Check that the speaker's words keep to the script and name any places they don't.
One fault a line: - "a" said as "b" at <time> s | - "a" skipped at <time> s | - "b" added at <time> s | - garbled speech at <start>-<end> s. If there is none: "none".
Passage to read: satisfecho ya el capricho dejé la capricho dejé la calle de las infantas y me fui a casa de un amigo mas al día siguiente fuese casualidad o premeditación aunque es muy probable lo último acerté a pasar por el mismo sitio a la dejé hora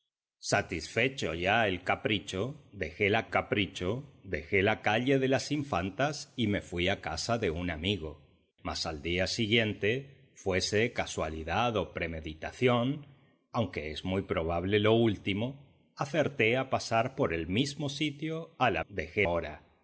none